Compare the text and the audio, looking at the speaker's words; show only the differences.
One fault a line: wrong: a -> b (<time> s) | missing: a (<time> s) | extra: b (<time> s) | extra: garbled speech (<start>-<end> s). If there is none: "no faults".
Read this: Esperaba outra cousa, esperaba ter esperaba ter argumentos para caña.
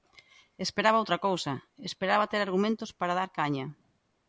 missing: esperaba ter (2.4 s)
extra: dar (3.2 s)